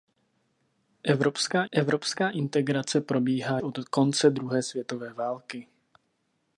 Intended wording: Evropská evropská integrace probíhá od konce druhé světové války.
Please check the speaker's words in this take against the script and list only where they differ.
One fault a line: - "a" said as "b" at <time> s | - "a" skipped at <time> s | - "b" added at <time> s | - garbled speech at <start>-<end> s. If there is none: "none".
none